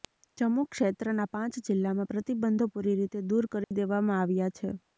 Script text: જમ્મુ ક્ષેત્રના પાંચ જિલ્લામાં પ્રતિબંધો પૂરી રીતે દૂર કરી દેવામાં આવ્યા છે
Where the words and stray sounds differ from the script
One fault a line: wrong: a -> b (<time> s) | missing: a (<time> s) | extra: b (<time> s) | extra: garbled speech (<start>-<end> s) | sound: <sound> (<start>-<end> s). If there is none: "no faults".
sound: dropout (3.6-3.7 s)